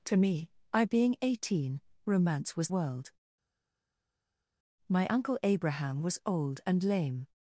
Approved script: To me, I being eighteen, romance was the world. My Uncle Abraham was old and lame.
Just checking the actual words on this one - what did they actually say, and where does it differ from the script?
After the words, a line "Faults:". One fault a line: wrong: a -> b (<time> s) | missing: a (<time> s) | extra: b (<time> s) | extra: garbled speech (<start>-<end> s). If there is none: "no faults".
To me, I being eighteen, romance was world. My Uncle Abraham was old and lame.
Faults:
missing: the (2.7 s)